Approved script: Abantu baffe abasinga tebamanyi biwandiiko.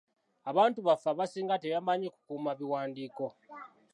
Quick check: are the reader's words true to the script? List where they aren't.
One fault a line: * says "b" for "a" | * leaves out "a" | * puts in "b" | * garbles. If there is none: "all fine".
* puts in "kukuuma"